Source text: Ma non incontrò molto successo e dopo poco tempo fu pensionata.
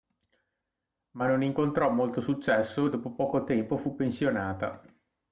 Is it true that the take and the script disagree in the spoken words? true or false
false